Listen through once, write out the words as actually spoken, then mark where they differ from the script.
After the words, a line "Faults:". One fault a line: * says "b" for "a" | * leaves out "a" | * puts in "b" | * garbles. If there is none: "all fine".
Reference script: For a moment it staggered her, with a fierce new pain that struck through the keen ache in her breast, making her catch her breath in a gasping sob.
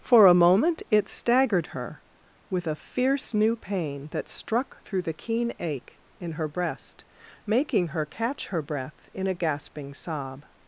For a moment it staggered her, with a fierce new pain that struck through the keen ache in her breast, making her catch her breath in a gasping sob.
Faults:
all fine